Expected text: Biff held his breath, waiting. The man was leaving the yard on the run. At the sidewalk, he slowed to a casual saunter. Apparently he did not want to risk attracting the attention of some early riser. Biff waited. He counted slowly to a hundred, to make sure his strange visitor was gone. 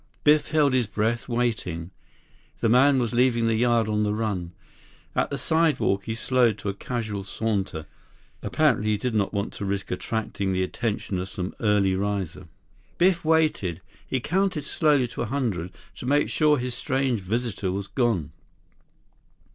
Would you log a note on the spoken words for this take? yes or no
no